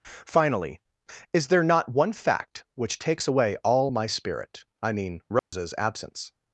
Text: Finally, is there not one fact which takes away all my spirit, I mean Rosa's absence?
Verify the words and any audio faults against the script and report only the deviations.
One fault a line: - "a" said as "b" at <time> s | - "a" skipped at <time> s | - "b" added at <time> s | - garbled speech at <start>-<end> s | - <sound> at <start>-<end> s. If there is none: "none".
- dropout at 5.4-5.5 s